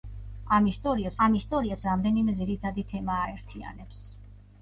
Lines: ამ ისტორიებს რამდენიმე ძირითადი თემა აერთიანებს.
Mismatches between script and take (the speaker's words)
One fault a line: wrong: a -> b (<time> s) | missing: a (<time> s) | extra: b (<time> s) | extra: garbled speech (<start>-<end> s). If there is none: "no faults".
extra: ამ ისტორიებს (1.2 s)